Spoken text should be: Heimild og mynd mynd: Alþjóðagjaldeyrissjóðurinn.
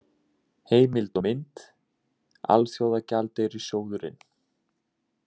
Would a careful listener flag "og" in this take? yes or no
no